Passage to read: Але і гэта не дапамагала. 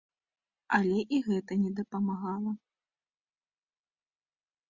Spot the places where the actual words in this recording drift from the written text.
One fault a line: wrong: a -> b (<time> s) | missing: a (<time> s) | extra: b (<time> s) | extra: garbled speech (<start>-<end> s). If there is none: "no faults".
no faults